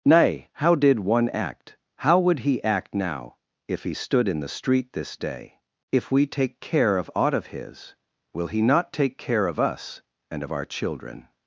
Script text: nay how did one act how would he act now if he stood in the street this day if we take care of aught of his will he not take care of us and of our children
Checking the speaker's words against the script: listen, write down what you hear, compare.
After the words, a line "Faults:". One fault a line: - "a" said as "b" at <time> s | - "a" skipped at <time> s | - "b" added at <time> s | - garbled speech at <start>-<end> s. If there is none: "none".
nay how did one act how would he act now if he stood in the street this day if we take care of aught of his will he not take care of us and of our children
Faults:
none